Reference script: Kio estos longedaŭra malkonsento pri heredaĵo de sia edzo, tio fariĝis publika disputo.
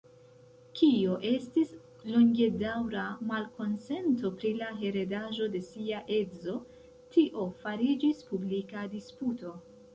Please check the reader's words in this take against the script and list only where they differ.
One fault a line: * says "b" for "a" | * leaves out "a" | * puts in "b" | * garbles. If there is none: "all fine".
* says "estis" for "estos"
* puts in "la"